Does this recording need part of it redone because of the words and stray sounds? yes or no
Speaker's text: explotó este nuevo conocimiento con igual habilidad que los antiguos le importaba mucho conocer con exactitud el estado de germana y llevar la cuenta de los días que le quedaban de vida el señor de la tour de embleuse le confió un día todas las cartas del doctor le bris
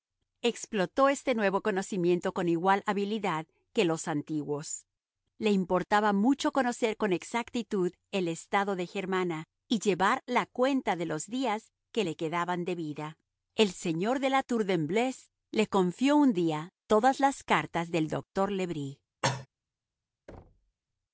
yes